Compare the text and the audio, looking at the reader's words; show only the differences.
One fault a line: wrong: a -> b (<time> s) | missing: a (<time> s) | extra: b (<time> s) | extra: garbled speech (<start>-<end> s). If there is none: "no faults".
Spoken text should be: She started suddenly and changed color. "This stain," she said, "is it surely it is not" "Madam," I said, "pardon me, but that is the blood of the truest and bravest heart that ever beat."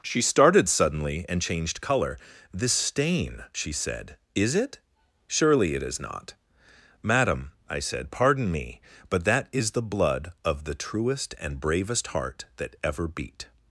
no faults